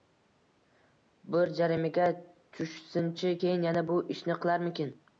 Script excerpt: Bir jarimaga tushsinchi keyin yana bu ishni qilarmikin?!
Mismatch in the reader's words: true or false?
false